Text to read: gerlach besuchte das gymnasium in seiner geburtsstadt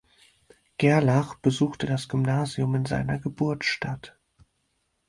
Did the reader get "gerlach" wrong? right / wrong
right